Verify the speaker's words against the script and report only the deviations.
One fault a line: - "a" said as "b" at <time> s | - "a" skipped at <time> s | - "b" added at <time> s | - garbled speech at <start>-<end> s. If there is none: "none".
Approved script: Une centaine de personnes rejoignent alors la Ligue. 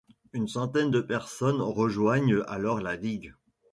none